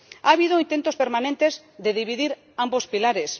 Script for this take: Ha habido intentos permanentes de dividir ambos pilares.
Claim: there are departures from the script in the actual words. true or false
false